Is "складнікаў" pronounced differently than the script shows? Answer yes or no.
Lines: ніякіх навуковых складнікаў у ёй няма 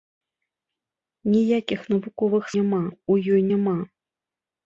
yes